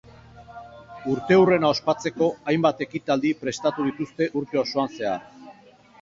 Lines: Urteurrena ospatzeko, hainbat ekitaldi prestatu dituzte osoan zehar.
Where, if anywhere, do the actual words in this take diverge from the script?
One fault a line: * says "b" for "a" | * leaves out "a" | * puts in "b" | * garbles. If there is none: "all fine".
* puts in "urte"